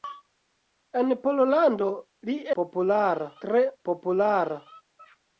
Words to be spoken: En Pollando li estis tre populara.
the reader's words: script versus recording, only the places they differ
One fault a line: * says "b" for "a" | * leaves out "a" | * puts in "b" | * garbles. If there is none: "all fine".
* says "populara" for "estis"